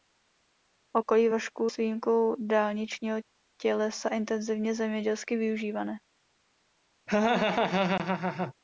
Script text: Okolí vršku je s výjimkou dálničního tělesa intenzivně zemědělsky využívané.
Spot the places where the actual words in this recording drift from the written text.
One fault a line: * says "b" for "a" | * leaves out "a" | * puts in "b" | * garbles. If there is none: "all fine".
* leaves out "je"